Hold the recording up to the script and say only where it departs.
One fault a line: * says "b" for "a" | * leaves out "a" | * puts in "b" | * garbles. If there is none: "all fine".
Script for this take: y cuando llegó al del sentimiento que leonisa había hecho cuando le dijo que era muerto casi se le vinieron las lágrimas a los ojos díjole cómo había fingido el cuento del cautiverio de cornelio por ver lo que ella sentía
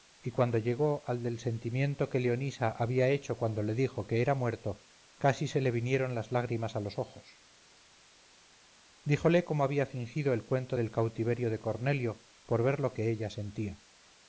all fine